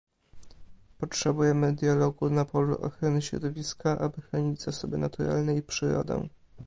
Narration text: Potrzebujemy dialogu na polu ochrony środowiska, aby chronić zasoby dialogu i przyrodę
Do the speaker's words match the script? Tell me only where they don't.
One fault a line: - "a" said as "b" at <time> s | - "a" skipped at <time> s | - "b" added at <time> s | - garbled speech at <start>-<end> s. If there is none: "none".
- "dialogu" said as "naturalne" at 5.0 s